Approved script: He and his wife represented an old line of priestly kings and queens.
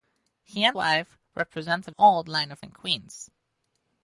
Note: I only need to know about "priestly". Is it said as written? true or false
false